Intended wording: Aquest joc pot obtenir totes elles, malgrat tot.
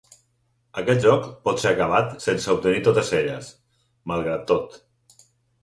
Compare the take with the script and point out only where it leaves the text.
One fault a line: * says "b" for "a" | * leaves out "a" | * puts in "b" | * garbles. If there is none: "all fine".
* puts in "ser acabat sense"